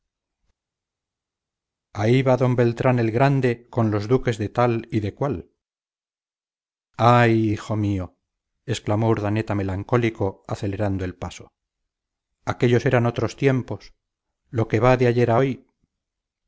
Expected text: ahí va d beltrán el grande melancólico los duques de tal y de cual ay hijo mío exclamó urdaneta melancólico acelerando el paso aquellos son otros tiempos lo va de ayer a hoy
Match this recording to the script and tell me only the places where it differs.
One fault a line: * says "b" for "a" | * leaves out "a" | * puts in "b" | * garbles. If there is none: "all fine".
* says "con" for "melancólico"
* says "eran" for "son"
* puts in "que"